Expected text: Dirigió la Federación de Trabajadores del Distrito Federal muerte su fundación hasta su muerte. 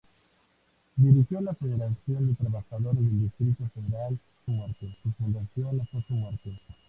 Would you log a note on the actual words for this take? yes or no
no